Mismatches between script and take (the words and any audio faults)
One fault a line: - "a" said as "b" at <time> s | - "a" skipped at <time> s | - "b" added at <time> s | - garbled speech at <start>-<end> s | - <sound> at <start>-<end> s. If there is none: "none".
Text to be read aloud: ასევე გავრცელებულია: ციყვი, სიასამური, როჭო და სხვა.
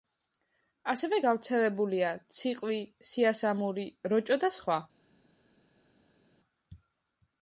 none